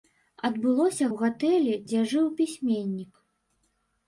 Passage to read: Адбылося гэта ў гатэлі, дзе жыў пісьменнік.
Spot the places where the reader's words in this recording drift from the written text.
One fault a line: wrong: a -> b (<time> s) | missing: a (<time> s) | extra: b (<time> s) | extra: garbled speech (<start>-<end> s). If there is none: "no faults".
missing: гэта (1.1 s)